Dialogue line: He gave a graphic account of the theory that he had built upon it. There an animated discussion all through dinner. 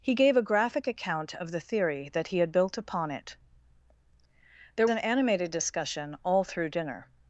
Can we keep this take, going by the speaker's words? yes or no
yes